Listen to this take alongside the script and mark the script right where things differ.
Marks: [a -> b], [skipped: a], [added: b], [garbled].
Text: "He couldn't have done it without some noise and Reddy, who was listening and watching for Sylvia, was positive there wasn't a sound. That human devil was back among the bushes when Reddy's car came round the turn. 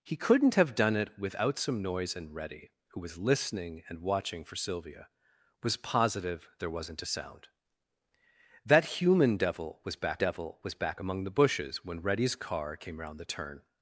"He couldn't have done it without some noise and Reddy, who was listening and watching for Sylvia, was positive there wasn't a sound. That human devil was back [added: devil was back] among the bushes when Reddy's car came round the turn.